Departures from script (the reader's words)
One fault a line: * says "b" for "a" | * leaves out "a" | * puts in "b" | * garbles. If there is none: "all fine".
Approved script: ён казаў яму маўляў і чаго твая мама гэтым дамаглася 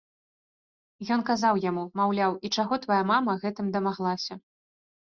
all fine